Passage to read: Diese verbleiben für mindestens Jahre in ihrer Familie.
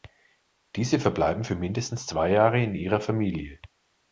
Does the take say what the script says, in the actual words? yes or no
no